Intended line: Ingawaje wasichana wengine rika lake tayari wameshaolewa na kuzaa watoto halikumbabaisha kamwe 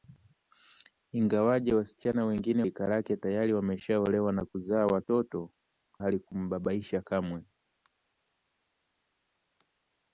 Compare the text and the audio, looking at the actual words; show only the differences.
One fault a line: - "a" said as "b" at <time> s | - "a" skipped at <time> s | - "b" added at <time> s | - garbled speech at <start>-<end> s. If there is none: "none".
none